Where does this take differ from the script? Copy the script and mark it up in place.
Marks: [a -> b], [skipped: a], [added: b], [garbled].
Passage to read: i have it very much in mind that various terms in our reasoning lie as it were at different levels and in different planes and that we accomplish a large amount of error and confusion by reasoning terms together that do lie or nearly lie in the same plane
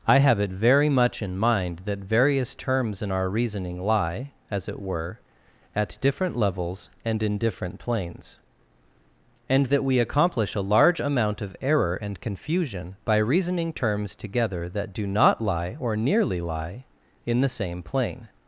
i have it very much in mind that various terms in our reasoning lie as it were at different levels and in different planes and that we accomplish a large amount of error and confusion by reasoning terms together that do [added: not] lie or nearly lie in the same plane